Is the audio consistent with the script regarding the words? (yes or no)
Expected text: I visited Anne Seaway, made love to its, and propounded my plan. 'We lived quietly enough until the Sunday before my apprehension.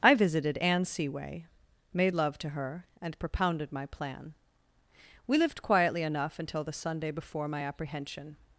no